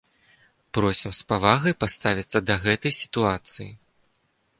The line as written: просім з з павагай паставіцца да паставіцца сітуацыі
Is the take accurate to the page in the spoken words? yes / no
no